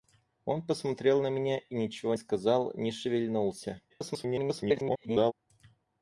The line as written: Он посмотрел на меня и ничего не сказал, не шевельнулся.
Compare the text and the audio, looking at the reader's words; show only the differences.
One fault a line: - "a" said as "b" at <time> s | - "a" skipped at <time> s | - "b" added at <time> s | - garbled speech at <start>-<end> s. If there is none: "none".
- "не" skipped at 2.1 s
- garbled speech at 3.9-5.3 s